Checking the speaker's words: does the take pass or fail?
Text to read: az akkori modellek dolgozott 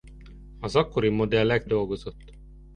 pass